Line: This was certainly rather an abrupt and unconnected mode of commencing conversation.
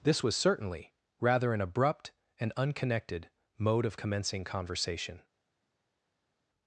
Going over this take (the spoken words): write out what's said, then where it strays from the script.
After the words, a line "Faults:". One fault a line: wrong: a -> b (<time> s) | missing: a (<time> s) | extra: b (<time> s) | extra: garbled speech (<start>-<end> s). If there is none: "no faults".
This was certainly rather an abrupt and unconnected mode of commencing conversation.
Faults:
no faults